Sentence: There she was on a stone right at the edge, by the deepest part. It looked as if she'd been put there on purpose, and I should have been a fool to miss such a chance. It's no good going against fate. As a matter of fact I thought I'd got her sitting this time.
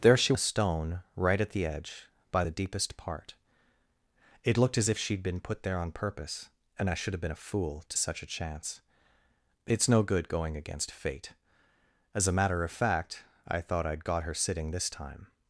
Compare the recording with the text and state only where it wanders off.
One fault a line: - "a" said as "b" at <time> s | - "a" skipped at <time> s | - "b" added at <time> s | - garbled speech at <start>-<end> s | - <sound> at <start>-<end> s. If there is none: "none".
- "was on" skipped at 0.3 s
- "miss" skipped at 8.0 s